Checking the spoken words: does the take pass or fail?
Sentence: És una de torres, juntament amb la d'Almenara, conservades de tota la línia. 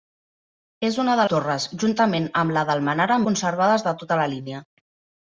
pass